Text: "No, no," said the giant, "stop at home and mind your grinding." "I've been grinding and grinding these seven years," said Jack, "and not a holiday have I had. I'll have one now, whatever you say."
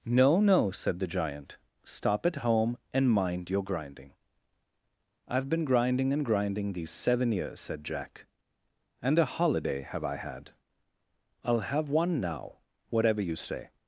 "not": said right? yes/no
no